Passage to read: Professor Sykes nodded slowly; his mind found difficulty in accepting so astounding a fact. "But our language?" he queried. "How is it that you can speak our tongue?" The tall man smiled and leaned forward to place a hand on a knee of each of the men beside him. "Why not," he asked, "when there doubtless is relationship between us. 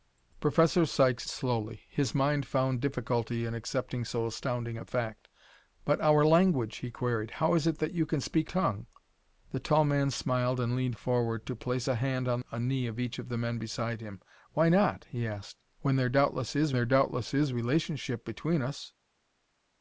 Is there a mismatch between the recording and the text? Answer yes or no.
yes